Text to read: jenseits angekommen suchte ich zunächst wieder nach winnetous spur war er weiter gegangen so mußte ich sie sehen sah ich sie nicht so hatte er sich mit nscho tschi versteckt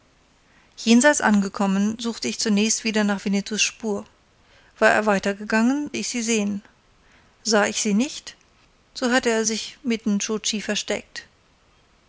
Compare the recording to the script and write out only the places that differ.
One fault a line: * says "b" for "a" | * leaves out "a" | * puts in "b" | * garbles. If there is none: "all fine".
* leaves out "so mußte"